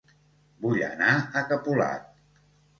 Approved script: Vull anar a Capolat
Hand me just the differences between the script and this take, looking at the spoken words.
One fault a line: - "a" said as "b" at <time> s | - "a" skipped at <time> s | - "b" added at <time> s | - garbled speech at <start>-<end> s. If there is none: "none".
none